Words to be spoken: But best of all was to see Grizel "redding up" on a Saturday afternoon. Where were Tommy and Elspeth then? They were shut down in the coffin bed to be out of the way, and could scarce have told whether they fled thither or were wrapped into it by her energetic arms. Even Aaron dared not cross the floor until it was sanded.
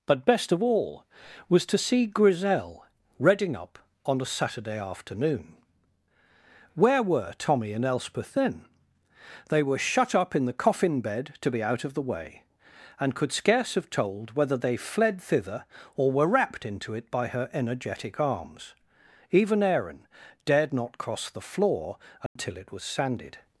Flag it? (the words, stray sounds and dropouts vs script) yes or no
yes